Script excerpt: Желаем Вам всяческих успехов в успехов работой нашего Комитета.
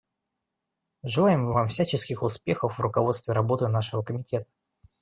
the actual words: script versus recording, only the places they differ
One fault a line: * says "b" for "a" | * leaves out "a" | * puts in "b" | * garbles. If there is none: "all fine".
* says "руководстве" for "успехов"